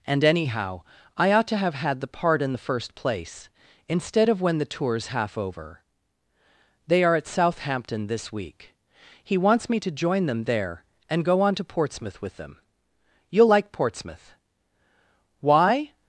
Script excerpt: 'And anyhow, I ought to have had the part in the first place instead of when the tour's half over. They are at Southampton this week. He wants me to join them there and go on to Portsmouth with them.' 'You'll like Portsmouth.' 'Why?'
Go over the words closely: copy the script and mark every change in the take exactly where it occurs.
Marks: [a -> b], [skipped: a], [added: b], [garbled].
'And anyhow, I ought to have had the part in the first place instead of when the tour's half over. They are at Southampton this week. He wants me to join them there and go on to Portsmouth with them.' 'You'll like Portsmouth.' 'Why?'